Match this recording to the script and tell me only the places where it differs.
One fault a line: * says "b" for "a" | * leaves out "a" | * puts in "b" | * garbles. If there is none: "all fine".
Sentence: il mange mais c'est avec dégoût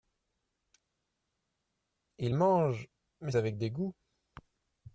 * leaves out "c'est"